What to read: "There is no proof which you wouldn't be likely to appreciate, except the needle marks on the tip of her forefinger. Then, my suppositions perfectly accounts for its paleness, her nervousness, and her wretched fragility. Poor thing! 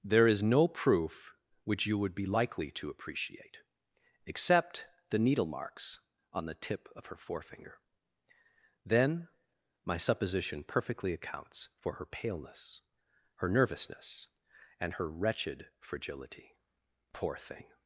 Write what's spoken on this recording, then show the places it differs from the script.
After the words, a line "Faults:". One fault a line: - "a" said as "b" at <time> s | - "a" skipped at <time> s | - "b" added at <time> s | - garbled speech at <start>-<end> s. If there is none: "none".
"There is no proof which you would be likely to appreciate, except the needle marks on the tip of her forefinger. Then, my supposition perfectly accounts for her paleness, her nervousness, and her wretched fragility. Poor thing!
Faults:
- "wouldn't" said as "would" at 2.0 s
- "suppositions" said as "supposition" at 10.0 s
- "its" said as "her" at 11.9 s